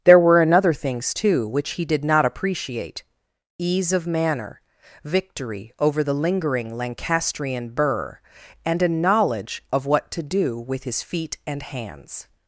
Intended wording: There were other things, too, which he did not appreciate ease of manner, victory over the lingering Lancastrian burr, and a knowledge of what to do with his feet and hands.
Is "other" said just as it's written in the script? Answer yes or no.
no